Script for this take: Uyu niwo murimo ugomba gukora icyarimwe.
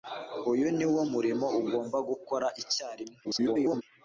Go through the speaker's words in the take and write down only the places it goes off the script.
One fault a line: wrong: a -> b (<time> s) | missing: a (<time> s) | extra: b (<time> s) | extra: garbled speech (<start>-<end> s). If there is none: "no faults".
extra: garbled speech (3.2-3.8 s)